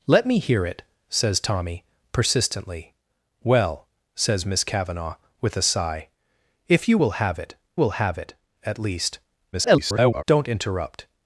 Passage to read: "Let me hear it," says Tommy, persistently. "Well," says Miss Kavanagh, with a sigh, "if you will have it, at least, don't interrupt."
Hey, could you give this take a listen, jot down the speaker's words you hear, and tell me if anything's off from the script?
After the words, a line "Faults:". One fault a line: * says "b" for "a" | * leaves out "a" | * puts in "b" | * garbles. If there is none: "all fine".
"Let me hear it," says Tommy, persistently. "Well," says Miss Kavanagh, with a sigh, "if you will have it will have it, at least, [garbled] don't interrupt."
Faults:
* puts in "will have it"
* garbles